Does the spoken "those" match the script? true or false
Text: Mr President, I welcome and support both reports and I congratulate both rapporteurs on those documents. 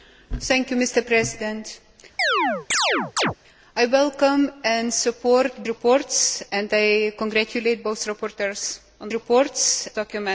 false